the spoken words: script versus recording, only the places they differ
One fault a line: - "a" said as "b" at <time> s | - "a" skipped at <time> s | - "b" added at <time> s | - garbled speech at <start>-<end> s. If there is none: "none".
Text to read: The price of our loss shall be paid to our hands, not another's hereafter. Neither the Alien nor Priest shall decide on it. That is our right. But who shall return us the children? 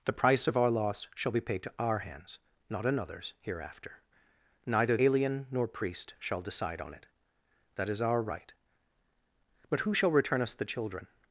- "the" skipped at 5.0 s